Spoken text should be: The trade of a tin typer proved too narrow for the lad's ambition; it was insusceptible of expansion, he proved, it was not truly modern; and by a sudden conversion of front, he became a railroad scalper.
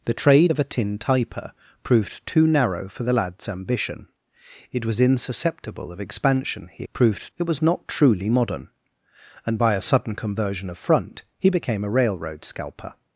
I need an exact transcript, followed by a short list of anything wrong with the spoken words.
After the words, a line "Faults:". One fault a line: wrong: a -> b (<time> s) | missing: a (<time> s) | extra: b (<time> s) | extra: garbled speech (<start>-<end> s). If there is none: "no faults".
The trade of a tin typer proved too narrow for the lad's ambition; it was insusceptible of expansion, he proved, it was not truly modern; and by a sudden conversion of front, he became a railroad scalper.
Faults:
no faults